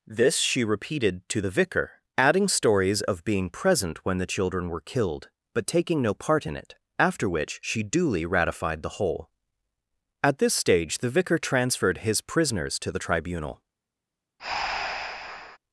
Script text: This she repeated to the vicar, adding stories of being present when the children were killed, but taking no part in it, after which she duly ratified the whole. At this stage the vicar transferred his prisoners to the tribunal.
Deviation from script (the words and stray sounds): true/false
true